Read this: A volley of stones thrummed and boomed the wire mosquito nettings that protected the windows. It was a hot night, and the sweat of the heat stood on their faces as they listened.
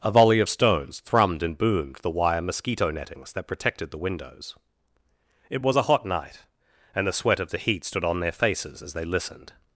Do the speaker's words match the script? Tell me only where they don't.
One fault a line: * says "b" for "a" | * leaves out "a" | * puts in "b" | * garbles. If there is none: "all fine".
all fine